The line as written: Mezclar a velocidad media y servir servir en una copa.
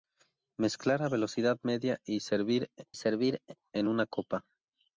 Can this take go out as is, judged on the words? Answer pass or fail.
pass